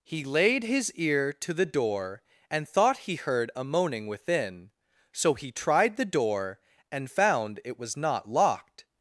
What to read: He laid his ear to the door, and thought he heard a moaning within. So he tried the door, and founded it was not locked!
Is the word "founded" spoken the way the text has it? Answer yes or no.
no